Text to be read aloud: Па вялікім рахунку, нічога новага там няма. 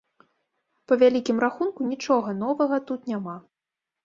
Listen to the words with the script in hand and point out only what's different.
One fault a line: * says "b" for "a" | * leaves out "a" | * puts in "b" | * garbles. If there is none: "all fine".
* says "тут" for "там"